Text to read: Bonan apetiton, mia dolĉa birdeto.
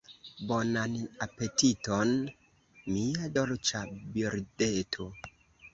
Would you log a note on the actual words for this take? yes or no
no